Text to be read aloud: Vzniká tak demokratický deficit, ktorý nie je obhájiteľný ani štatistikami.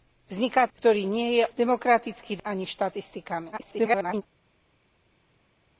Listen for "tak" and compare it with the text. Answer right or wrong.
wrong